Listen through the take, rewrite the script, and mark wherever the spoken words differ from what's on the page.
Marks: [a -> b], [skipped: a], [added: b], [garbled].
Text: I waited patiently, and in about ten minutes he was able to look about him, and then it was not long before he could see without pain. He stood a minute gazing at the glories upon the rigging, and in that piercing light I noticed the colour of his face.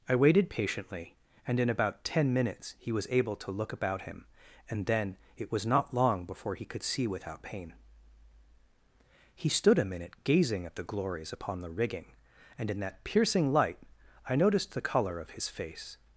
I waited patiently, and in about ten minutes he was able to look about him, and then it was not long before he could see without pain. He stood a minute gazing at the glories upon the rigging, and in that piercing light I noticed the colour of his face.